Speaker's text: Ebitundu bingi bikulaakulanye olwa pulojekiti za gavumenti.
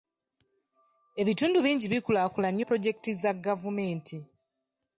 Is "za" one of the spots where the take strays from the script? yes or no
no